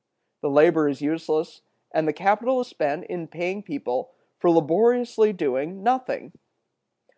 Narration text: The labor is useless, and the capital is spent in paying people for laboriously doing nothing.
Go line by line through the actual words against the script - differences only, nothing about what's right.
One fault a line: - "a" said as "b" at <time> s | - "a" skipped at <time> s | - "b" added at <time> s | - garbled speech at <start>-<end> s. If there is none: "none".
none